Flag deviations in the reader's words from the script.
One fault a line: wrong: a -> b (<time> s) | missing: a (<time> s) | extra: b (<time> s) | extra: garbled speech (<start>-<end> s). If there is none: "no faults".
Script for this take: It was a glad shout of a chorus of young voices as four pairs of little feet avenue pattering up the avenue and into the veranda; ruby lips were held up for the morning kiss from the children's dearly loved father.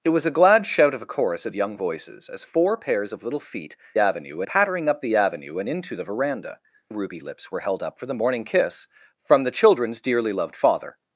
no faults